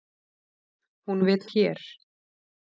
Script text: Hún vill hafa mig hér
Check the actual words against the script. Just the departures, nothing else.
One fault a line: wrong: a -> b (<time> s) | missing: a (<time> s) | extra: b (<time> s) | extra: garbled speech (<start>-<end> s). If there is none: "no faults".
missing: hafa mig (1.4 s)